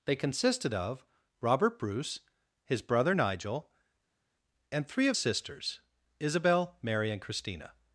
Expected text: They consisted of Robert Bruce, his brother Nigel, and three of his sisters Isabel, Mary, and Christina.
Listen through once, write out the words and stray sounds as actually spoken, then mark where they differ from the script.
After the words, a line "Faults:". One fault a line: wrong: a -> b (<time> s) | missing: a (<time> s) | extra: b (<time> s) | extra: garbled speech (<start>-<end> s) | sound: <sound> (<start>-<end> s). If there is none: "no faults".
They consisted of Robert Bruce, his brother Nigel, and three of sisters Isabel, Mary, and Christina.
Faults:
missing: his (5.2 s)